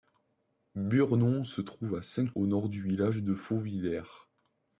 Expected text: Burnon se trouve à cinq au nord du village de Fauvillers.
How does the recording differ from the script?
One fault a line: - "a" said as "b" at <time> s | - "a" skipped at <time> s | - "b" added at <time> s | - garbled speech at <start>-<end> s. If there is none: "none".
none